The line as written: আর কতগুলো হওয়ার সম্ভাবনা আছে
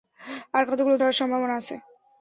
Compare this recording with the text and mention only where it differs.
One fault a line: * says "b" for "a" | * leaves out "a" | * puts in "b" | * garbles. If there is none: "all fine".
all fine